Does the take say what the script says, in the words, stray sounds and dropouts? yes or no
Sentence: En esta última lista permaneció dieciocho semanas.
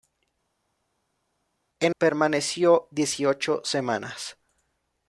no